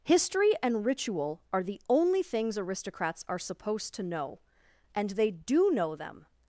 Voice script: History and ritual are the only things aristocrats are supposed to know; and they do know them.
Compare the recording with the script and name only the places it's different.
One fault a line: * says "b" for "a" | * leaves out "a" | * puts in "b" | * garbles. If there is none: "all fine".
all fine